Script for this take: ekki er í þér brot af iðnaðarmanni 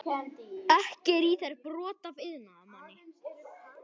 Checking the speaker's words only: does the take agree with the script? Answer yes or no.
yes